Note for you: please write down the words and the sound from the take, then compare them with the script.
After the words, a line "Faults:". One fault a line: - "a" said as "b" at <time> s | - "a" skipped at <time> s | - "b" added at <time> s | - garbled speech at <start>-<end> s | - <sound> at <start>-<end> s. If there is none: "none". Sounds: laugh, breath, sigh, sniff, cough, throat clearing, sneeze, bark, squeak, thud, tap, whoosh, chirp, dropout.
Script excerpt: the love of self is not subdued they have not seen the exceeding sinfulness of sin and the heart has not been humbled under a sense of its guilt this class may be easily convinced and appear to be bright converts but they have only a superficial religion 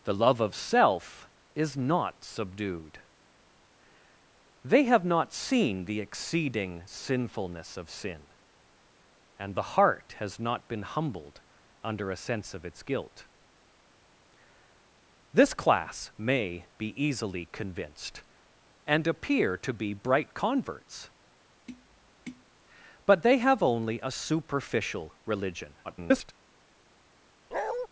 the love of self is not subdued they have not seen the exceeding sinfulness of sin and the heart has not been humbled under a sense of its guilt this class may be easily convinced and appear to be bright converts but they have only a superficial religion [garbled]
Faults:
- tap at 21.7-22.5 s
- garbled speech at 25.8-26.3 s
- bark at 27.5-27.9 s